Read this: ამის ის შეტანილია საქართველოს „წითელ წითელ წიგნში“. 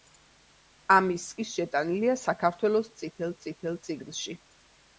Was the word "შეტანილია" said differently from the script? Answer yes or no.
no